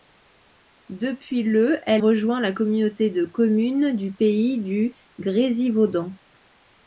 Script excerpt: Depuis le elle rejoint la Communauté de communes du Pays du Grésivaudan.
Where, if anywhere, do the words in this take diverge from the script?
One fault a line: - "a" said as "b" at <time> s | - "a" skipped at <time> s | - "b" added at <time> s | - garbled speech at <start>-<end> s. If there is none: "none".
none